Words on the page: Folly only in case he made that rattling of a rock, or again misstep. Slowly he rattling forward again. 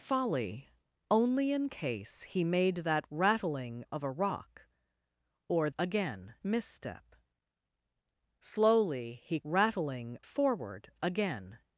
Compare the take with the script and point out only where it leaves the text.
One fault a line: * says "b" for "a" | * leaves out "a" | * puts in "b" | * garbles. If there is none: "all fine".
all fine